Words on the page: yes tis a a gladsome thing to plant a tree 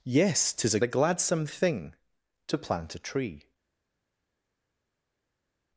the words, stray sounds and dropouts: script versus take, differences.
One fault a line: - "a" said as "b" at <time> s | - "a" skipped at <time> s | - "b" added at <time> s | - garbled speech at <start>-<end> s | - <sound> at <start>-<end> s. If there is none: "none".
none